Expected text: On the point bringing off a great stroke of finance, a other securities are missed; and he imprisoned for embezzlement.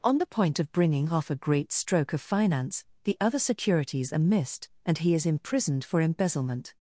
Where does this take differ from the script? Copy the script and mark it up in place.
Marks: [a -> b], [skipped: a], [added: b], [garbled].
On the point [added: of] bringing off a great stroke of finance, [a -> the] other securities are missed; and he [added: is] imprisoned for embezzlement.